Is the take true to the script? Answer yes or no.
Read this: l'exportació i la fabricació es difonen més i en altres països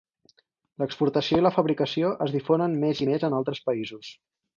no